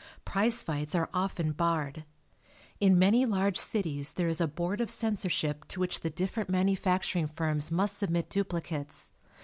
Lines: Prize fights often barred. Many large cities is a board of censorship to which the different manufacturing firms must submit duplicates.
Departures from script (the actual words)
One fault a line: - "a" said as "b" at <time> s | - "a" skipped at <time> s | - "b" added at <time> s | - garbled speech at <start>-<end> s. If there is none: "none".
- "are" added at 0.9 s
- "In" added at 2.8 s
- "there" added at 4.1 s